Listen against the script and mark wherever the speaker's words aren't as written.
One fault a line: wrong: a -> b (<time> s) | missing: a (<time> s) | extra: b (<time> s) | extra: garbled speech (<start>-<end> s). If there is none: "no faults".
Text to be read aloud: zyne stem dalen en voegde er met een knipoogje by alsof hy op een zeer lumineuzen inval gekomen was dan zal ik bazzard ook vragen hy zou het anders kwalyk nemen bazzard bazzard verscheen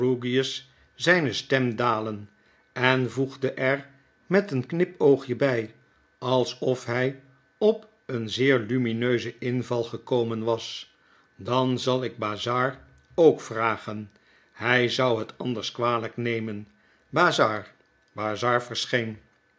no faults